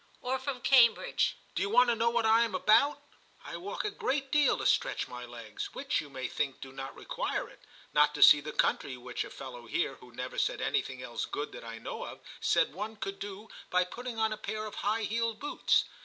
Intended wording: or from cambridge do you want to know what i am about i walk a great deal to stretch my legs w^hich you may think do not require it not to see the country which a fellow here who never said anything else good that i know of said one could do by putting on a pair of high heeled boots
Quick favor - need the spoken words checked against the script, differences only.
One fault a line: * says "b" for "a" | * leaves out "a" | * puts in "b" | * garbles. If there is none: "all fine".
all fine